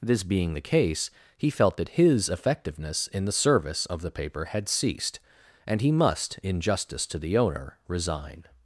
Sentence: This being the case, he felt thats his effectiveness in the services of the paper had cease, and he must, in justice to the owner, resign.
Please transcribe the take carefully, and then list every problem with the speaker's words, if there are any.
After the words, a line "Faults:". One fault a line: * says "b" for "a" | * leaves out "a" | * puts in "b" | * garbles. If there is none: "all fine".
This being the case, he felt that his effectiveness in the service of the paper had ceased, and he must, in justice to the owner, resign.
Faults:
* says "that" for "thats"
* says "service" for "services"
* says "ceased" for "cease"